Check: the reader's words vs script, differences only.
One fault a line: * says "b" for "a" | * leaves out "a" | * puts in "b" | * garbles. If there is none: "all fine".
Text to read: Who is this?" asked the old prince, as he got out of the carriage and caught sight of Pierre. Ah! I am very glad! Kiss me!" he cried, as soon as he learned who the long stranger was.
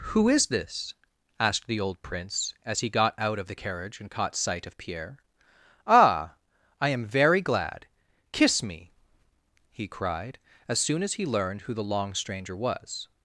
all fine